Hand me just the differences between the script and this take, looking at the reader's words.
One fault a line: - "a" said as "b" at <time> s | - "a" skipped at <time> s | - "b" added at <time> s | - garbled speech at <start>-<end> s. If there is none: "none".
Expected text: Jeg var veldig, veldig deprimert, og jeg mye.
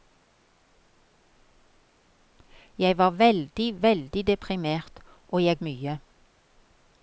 none